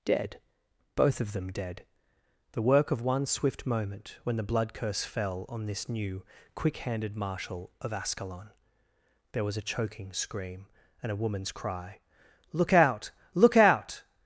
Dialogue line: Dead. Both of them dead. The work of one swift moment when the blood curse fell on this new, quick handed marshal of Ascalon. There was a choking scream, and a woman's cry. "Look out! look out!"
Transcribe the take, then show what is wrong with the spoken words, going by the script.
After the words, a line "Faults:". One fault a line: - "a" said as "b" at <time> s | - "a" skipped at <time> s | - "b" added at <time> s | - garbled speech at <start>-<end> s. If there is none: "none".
Dead. Both of them dead. The work of one swift moment when the blood curse fell on this new, quick handed marshal of Ascalon. There was a choking scream, and a woman's cry. "Look out! look out!"
Faults:
none